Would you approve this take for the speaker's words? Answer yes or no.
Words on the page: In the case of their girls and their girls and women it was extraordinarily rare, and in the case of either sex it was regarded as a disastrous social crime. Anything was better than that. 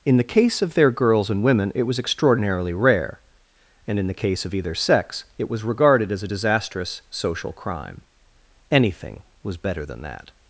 no